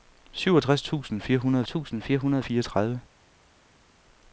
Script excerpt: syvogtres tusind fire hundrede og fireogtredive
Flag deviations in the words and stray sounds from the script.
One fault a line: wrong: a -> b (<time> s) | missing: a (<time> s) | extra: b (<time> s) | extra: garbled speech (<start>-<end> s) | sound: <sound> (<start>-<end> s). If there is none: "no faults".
extra: tusind fire hundrede (1.6 s)